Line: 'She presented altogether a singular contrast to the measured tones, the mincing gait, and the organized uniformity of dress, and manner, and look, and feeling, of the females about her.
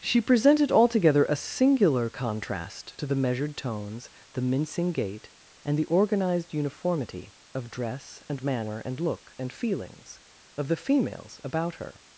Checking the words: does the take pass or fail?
fail